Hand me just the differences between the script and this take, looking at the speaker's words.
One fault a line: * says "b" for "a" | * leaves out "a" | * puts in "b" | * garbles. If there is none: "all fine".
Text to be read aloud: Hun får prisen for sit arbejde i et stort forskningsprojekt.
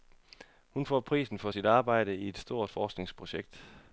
all fine